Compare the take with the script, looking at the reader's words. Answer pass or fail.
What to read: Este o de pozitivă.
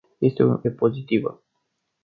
pass